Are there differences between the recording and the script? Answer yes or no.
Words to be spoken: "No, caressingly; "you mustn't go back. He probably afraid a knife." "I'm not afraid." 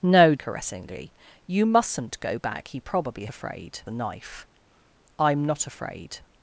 no